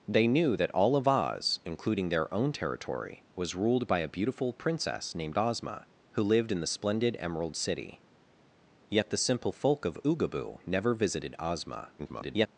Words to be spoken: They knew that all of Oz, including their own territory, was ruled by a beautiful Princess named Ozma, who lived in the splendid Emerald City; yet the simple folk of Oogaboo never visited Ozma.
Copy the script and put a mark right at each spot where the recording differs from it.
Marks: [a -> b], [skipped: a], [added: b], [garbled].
They knew that all of Oz, including their own territory, was ruled by a beautiful Princess named Ozma, who lived in the splendid Emerald City; yet the simple folk of Oogaboo never visited Ozma. [garbled]